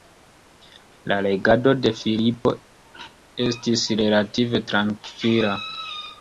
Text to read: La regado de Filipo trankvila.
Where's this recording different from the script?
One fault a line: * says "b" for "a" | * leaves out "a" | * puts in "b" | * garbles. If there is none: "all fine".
* puts in "estis relative"